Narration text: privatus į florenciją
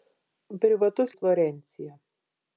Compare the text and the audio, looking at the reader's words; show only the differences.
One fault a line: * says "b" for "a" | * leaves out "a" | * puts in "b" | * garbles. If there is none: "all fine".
all fine